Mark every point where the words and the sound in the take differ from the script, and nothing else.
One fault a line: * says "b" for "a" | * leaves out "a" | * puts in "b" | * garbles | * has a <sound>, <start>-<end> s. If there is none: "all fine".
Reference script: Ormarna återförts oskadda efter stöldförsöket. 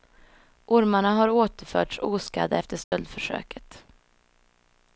* puts in "har"
* has a dropout, 2.8-2.9 s